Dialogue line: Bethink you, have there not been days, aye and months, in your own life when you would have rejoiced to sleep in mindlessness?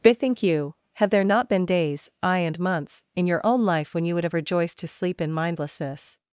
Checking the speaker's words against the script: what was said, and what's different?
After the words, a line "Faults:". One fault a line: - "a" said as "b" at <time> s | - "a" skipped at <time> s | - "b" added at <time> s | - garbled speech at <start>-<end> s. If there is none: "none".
Bethink you, have there not been days, aye and months, in your own life when you would have rejoiced to sleep in mindlessness?
Faults:
none